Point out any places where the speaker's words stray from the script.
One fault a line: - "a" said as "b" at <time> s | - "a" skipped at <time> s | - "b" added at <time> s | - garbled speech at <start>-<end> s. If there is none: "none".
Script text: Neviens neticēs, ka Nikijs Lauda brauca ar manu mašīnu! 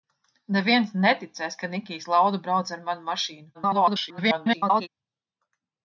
- garbled speech at 3.5-4.9 s